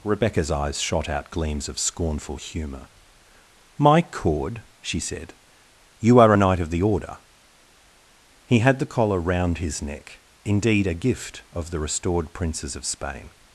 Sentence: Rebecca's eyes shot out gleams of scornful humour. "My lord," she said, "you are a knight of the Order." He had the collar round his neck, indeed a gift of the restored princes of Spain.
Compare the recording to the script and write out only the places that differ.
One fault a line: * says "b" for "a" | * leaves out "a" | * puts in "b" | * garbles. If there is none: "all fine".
* says "cord" for "lord"